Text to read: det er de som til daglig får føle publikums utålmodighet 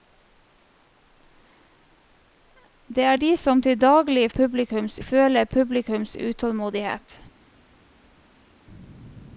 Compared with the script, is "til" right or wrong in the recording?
right